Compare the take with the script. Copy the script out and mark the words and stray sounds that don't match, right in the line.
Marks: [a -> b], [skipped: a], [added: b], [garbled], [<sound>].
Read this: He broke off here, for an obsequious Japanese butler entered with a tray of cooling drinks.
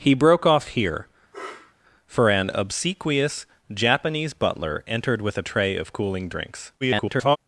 He broke off here, [sniff] for an obsequious Japanese butler entered with a tray of cooling drinks. [garbled]